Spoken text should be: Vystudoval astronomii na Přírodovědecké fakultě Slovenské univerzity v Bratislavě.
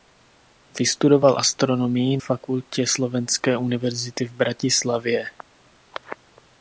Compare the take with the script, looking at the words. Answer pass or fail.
fail